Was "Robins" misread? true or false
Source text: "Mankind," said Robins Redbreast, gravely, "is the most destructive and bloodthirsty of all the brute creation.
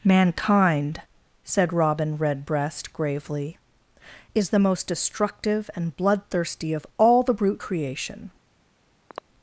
true